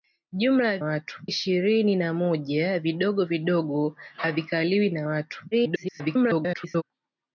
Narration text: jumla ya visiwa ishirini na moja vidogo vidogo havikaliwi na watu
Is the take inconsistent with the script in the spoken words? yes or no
yes